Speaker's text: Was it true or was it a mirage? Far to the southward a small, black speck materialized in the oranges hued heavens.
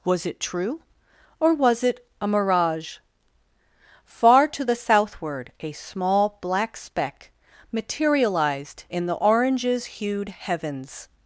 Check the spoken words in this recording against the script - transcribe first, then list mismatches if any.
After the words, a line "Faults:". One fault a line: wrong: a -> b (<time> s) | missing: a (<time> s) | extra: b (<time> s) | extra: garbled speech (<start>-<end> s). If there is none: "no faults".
Was it true or was it a mirage? Far to the southward a small, black speck materialized in the oranges hued heavens.
Faults:
no faults